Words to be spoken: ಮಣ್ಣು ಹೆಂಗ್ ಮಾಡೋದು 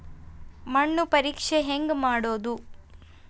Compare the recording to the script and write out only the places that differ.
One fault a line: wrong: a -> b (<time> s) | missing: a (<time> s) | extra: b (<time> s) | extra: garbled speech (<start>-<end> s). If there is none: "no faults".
extra: ಪರೇಕ್ಷೆ (1.1 s)